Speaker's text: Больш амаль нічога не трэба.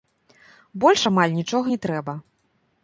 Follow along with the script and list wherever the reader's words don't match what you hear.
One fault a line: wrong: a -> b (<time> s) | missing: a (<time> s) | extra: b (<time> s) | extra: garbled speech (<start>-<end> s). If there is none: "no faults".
no faults